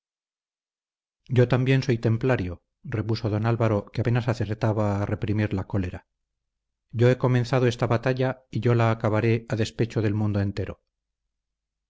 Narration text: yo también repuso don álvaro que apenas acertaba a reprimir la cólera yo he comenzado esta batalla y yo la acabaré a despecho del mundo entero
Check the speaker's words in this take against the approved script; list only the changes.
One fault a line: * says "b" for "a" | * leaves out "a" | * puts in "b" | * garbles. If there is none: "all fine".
* puts in "soy templario"